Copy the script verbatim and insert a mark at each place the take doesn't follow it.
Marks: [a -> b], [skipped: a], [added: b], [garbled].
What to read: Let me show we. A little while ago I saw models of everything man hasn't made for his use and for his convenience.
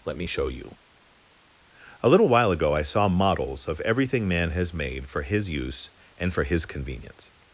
Let me show [we. -> you] A little while ago I saw models of everything man [hasn't -> has] made for his use and for his convenience.